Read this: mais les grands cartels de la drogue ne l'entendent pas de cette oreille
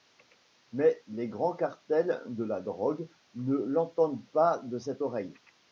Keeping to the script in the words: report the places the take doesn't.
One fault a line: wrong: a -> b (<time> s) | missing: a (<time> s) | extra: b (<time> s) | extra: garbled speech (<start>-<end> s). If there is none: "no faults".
no faults